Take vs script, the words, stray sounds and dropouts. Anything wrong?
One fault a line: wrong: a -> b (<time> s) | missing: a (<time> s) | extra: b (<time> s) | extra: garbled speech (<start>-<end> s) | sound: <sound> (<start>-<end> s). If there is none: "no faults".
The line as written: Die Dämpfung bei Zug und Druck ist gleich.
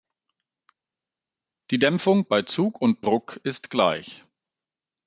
no faults